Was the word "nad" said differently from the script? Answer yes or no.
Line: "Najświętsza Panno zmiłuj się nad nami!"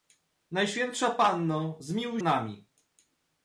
yes